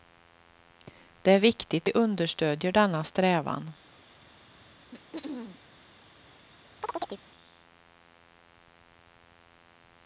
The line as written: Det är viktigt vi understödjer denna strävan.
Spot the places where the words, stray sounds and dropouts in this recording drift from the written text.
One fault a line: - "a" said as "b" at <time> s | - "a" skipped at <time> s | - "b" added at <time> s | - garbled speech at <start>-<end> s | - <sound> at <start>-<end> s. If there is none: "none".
- throat clearing at 4.9-5.6 s
- chirp at 6.8-7.2 s